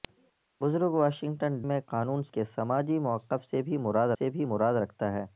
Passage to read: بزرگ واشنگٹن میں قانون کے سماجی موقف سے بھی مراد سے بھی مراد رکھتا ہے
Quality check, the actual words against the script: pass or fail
pass